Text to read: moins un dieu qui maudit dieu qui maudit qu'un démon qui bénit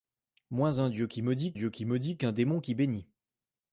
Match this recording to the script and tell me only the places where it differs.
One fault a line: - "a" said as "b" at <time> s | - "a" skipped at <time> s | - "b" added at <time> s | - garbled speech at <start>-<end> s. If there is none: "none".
none